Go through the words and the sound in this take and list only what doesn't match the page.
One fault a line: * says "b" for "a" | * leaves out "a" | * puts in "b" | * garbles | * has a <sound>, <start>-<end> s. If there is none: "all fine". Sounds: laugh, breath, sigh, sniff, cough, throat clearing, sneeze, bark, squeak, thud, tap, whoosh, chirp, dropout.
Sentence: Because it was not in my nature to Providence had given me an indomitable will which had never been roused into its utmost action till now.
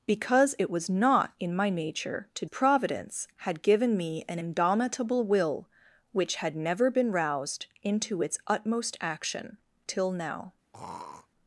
* has a throat clearing, 10.7-11.3 s